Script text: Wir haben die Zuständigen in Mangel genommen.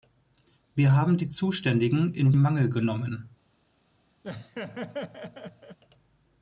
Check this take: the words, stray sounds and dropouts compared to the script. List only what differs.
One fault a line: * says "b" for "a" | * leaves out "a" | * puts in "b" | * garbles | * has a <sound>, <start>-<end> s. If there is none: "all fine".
* has a laugh, 4.2-5.8 s